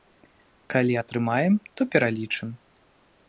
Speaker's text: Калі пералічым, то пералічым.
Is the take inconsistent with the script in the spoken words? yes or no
yes